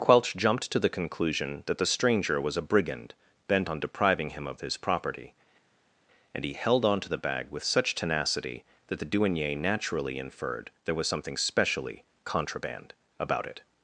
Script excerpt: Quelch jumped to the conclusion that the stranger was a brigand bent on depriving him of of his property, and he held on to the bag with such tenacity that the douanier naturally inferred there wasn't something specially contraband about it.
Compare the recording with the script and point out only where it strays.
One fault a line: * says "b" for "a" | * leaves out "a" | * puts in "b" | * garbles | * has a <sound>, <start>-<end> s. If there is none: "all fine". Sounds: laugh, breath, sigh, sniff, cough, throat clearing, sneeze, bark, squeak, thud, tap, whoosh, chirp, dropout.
* leaves out "of"
* says "was" for "wasn't"